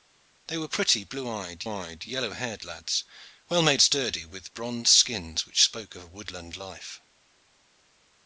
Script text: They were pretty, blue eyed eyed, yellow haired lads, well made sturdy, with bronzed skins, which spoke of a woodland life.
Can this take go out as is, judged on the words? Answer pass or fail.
pass